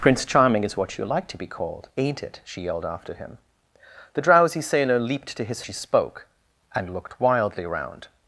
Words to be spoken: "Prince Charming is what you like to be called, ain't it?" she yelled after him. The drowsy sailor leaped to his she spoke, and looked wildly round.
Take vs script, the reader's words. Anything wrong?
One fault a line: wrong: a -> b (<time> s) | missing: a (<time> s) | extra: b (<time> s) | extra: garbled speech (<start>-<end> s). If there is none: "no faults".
no faults